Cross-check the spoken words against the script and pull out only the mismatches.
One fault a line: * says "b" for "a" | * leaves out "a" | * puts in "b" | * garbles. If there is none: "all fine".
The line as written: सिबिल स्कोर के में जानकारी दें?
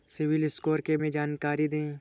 all fine